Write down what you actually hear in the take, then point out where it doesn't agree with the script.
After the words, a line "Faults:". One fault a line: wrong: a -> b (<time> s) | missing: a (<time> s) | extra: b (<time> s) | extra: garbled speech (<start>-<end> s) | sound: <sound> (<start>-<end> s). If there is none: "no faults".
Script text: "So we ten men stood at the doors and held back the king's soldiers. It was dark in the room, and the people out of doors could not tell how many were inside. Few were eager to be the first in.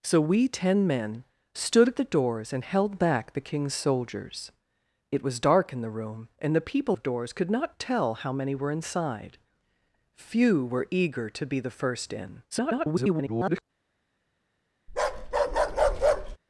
"So we ten men stood at the doors and held back the king's soldiers. It was dark in the room, and the people of doors could not tell how many were inside. Few were eager to be the first in. [garbled]
Faults:
missing: out (7.0 s)
extra: garbled speech (12.5-13.6 s)
sound: bark (14.9-16.4 s)